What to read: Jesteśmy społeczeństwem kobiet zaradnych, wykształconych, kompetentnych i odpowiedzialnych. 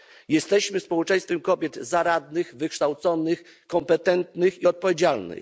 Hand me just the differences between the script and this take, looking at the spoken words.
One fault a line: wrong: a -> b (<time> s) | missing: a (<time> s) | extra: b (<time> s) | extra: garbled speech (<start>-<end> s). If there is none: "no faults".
no faults